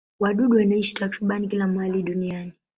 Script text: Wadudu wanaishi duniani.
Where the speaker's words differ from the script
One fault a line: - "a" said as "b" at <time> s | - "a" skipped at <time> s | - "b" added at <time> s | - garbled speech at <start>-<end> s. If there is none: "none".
- "takriban kila mahali" added at 0.9 s